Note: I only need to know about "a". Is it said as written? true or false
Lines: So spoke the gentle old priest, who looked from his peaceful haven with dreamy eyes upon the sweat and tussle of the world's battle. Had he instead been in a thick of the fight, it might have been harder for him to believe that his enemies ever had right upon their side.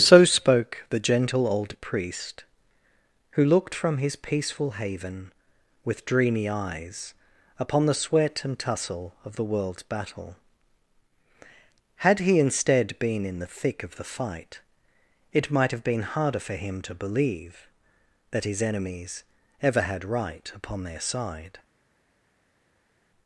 false